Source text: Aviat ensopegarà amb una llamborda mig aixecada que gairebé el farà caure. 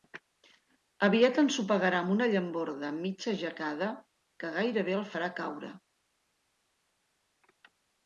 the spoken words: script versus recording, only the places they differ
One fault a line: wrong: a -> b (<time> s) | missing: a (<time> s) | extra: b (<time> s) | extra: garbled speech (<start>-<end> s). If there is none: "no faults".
no faults